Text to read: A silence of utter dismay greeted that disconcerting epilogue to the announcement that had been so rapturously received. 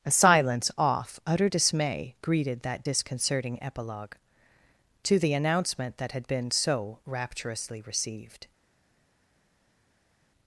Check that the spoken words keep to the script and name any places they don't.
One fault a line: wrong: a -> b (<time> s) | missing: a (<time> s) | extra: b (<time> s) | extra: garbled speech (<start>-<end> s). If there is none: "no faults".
wrong: of -> off (0.8 s)